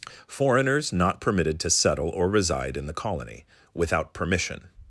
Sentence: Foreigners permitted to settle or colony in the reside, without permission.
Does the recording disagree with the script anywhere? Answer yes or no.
yes